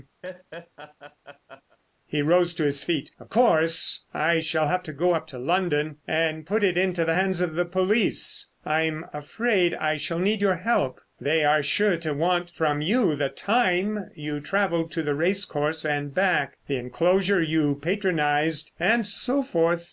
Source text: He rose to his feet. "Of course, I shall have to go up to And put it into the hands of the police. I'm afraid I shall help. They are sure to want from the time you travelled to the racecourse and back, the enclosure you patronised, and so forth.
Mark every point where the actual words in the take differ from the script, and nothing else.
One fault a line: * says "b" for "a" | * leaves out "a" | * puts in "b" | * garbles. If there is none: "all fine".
* puts in "London"
* puts in "need your"
* puts in "you"